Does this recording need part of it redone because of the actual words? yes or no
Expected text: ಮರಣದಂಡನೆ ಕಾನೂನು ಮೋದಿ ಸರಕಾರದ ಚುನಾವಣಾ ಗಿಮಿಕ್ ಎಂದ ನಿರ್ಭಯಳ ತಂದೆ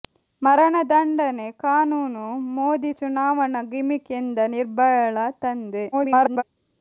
yes